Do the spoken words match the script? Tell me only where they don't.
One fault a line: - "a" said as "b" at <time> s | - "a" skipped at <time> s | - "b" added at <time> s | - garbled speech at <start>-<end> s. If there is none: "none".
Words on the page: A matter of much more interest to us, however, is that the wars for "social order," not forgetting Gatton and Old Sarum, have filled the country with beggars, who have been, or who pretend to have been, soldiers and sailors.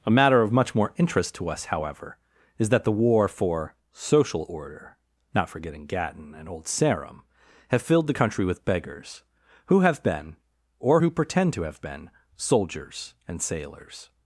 - "wars" said as "war" at 2.9 s